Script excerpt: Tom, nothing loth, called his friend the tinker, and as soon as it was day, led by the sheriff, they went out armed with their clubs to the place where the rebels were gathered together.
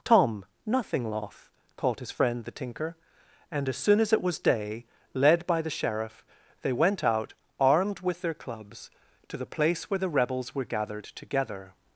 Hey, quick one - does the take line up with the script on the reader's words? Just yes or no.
yes